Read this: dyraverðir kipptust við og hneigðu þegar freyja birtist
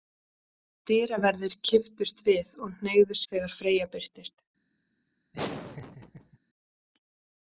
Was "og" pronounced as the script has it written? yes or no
yes